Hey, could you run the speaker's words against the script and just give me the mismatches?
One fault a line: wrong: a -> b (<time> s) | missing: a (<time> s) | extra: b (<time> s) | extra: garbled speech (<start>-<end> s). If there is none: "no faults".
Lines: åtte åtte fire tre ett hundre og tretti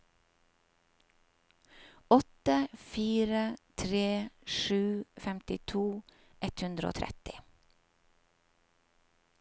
missing: åtte (2.7 s)
extra: sju femtito (4.5 s)